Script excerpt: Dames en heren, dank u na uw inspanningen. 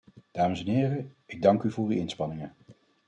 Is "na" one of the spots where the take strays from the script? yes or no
yes